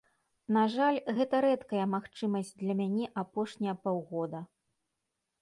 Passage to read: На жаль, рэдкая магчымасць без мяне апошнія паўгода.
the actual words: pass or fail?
fail